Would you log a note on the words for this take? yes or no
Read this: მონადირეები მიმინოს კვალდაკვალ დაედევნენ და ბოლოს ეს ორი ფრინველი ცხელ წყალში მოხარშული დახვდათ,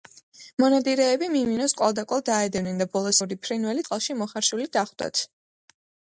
yes